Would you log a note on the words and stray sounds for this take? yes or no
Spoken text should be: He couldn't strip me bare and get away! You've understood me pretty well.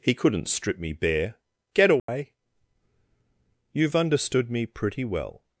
yes